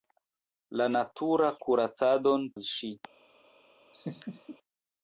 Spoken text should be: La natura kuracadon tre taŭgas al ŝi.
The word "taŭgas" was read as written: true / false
false